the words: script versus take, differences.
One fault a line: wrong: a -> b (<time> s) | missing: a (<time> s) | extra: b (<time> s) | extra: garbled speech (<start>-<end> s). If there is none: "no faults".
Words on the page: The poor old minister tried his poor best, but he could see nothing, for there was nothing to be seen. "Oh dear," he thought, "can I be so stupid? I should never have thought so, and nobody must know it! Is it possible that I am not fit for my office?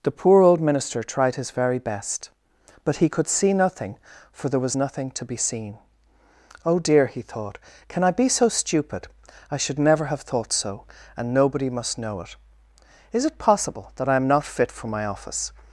wrong: poor -> very (1.5 s)